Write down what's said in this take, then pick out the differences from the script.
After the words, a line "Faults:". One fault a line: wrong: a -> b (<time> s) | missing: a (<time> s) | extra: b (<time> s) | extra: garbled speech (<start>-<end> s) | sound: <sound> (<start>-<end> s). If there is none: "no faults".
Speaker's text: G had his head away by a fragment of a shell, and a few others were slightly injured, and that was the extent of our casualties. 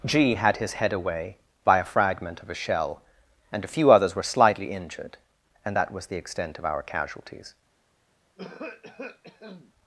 G had his head away by a fragment of a shell, and a few others were slightly injured, and that was the extent of our casualties.
Faults:
sound: cough (8.4-9.7 s)